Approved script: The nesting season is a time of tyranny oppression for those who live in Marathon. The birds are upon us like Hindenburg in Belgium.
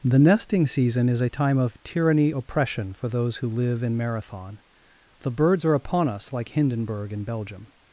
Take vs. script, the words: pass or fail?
pass